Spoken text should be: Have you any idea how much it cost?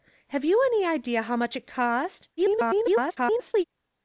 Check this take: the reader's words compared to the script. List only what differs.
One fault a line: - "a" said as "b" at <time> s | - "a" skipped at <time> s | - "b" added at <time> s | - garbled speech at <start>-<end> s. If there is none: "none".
- garbled speech at 2.4-3.6 s